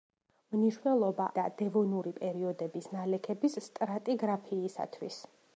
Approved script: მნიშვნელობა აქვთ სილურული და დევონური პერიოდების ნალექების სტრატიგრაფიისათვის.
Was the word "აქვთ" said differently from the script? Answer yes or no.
yes